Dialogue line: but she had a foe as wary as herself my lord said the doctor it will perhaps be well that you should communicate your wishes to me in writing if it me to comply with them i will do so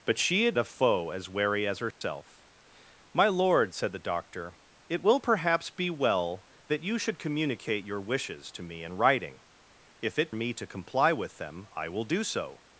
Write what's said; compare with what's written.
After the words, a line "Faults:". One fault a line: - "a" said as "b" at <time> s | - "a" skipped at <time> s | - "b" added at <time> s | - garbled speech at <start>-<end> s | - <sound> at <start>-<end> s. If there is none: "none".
but she had a foe as wary as herself my lord said the doctor it will perhaps be well that you should communicate your wishes to me in writing if it me to comply with them i will do so
Faults:
- dropout at 1.9-2.0 s